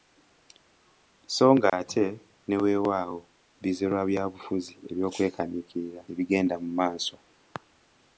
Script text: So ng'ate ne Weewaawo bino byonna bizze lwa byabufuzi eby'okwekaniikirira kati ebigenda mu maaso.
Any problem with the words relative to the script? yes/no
yes